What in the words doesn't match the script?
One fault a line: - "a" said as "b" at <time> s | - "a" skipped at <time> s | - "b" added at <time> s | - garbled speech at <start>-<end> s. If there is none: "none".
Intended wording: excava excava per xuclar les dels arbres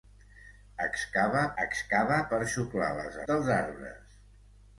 none